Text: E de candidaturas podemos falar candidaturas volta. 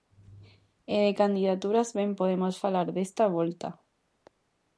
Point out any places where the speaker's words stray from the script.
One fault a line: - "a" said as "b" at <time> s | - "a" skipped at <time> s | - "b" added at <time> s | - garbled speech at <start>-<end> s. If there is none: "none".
- "ben" added at 2.0 s
- "candidaturas" said as "desta" at 3.0 s